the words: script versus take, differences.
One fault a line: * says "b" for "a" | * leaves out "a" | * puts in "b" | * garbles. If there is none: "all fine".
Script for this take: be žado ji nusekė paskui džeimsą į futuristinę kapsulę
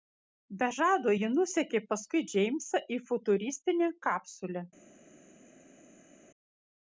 all fine